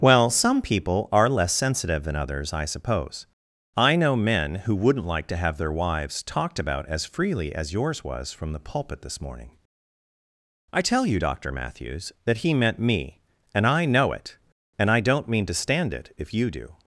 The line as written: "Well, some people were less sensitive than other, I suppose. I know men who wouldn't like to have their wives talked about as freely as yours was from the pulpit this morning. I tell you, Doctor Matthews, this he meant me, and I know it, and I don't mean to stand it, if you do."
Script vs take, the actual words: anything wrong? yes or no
yes